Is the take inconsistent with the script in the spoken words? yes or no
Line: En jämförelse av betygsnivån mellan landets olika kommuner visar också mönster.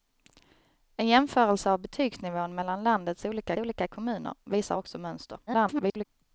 yes